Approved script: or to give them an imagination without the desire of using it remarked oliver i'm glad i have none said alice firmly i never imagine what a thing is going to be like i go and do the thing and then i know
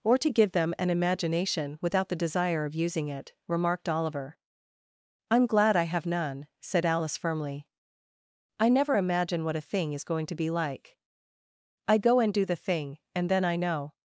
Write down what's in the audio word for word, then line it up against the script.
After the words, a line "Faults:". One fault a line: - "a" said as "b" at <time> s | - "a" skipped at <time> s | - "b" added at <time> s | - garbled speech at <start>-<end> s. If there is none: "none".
or to give them an imagination without the desire of using it remarked oliver i'm glad i have none said alice firmly i never imagine what a thing is going to be like i go and do the thing and then i know
Faults:
none